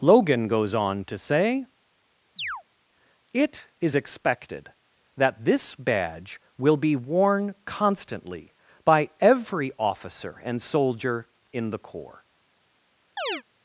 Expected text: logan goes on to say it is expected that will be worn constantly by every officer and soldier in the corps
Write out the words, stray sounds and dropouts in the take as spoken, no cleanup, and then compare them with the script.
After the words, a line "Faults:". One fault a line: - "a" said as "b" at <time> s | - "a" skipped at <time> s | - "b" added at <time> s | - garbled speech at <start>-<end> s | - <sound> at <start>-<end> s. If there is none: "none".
logan goes on to say it is expected that this badge will be worn constantly by every officer and soldier in the corps
Faults:
- chirp at 2.4-2.6 s
- "this badge" added at 5.4 s
- chirp at 13.2-13.4 s